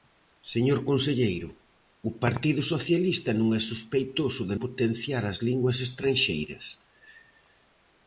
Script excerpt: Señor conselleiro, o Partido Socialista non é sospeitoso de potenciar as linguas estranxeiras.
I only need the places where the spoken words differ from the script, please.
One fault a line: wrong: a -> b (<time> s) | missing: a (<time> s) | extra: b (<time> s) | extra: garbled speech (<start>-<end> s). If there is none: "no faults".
no faults